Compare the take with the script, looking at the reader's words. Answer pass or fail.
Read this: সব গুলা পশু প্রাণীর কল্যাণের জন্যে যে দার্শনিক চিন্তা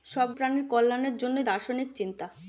fail